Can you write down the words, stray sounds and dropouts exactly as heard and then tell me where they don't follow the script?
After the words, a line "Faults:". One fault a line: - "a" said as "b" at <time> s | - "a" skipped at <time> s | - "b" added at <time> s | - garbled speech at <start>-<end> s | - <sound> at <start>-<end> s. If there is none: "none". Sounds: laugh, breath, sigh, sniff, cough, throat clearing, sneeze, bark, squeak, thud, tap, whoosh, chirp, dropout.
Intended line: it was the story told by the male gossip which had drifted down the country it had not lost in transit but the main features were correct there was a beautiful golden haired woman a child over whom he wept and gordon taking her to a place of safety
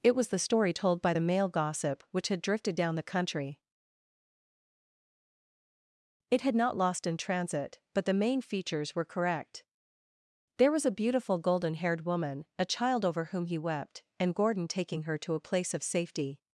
it was the story told by the male gossip which had drifted down the country it had not lost in transit but the main features were correct there was a beautiful golden haired woman a child over whom he wept and gordon taking her to a place of safety
Faults:
none